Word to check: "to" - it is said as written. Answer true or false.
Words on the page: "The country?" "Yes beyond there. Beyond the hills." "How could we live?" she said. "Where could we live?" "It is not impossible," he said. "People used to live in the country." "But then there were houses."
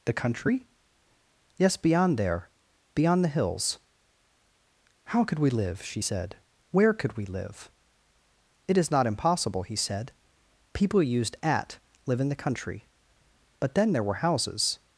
false